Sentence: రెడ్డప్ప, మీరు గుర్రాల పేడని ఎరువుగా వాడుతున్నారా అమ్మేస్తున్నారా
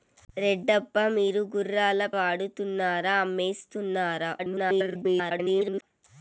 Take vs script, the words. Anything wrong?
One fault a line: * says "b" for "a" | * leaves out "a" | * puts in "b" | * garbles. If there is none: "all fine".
* leaves out "పేడని ఎరువుగా"
* garbles